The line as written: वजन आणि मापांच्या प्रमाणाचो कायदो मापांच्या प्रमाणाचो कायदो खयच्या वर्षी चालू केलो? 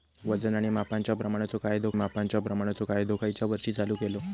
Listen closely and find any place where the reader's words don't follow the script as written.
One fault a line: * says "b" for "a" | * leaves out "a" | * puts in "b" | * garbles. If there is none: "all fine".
all fine